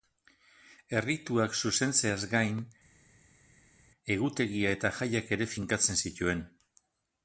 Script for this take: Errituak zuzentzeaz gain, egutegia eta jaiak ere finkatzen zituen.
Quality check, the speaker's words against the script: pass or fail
pass